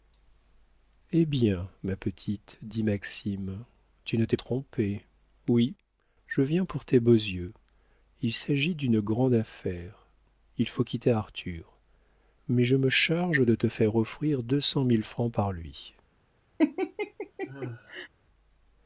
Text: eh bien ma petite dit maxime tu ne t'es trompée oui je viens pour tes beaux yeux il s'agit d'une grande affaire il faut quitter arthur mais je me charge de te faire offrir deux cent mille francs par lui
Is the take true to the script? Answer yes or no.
yes